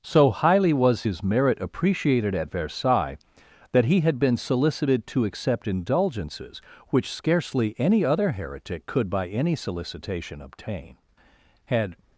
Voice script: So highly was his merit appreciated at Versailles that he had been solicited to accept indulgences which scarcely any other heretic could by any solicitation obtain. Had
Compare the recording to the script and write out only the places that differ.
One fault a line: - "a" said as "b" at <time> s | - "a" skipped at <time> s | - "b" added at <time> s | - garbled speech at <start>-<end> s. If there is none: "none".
none